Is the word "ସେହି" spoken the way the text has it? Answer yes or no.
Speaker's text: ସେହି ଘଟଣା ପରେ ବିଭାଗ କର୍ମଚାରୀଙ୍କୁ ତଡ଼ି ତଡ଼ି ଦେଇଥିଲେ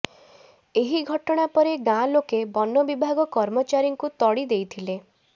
no